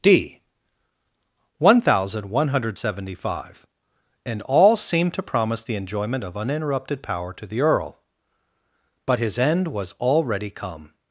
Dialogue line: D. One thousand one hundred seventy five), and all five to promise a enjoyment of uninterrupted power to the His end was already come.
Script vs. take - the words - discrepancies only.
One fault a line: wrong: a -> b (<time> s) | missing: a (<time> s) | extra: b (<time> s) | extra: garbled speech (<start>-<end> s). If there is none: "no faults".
wrong: five -> seemed (4.8 s)
wrong: a -> the (5.6 s)
extra: Earl But (7.6 s)